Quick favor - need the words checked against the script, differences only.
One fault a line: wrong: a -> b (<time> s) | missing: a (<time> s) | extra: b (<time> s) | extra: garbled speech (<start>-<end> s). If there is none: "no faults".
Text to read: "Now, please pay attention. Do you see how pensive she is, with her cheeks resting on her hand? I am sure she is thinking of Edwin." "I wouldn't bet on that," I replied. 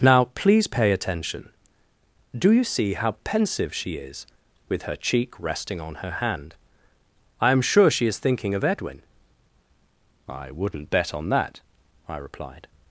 wrong: cheeks -> cheek (5.0 s)